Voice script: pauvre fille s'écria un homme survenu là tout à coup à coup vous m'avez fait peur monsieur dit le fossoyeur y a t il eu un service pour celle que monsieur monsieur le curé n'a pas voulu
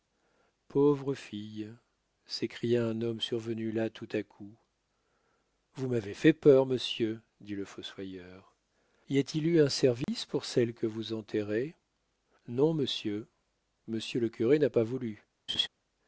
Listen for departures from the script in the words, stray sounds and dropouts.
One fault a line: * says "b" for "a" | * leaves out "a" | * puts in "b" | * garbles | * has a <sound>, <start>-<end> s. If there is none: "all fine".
* leaves out "à coup"
* has a dropout, 10.0-10.1 s
* puts in "vous enterrez non"
* has a laugh, 15.5-15.7 s